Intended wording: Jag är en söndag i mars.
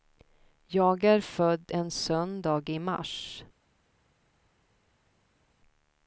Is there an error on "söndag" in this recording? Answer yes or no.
no